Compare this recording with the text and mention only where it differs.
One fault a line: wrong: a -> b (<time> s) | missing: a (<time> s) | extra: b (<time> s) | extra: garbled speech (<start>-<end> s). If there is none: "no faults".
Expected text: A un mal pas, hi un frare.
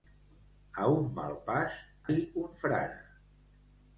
no faults